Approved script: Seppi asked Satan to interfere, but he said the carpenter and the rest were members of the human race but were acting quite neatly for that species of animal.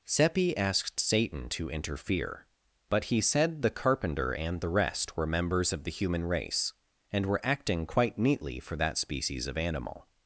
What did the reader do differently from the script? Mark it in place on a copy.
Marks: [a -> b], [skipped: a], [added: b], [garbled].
Seppi asked Satan to interfere, but he said the carpenter and the rest were members of the human race [but -> and] were acting quite neatly for that species of animal.